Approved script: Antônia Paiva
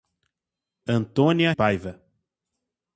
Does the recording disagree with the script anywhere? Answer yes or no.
no